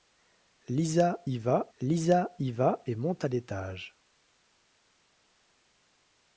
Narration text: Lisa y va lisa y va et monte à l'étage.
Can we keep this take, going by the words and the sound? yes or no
yes